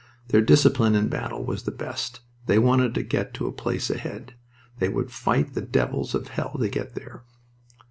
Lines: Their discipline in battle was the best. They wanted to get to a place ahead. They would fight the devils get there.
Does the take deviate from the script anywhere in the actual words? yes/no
yes